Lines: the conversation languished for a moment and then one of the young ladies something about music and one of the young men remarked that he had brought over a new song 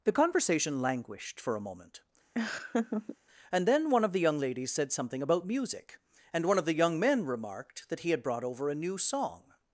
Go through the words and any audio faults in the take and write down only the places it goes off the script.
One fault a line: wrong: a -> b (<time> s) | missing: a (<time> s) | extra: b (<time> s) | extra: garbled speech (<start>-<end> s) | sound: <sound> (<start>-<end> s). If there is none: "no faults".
sound: laugh (2.3-3.2 s)
extra: said (4.7 s)